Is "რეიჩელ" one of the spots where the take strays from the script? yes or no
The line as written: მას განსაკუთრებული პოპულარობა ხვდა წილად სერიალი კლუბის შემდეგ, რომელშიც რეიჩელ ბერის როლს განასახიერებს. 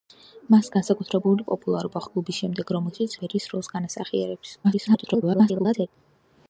yes